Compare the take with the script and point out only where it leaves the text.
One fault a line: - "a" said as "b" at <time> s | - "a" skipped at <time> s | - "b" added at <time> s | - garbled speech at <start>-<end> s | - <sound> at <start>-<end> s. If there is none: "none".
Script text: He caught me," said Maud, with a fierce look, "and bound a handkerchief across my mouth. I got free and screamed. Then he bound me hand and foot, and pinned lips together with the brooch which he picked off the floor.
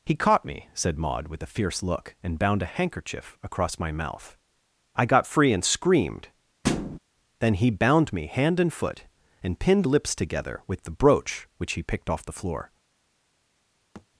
- thud at 6.6-7.0 s
- thud at 13.9-14.1 s